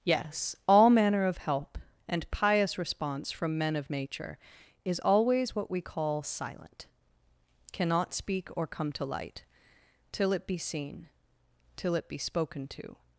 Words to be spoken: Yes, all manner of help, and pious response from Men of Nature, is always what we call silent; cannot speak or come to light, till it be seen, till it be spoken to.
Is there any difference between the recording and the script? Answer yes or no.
no